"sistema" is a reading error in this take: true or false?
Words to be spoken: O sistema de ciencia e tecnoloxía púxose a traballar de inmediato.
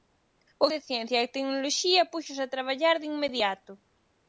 true